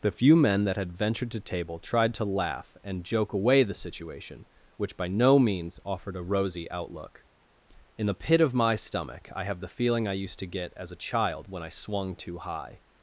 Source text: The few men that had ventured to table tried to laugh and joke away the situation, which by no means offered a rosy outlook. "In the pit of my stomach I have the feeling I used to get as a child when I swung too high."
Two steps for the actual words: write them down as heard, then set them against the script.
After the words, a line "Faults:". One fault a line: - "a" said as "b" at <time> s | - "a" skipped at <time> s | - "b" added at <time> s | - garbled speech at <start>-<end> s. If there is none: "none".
The few men that had ventured to table tried to laugh and joke away the situation, which by no means offered a rosy outlook. "In the pit of my stomach I have the feeling I used to get as a child when I swung too high."
Faults:
none